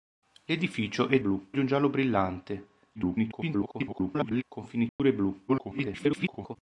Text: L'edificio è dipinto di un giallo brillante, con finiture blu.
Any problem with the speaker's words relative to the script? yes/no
yes